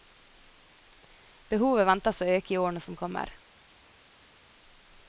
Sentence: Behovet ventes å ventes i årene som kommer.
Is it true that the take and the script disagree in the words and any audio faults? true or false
true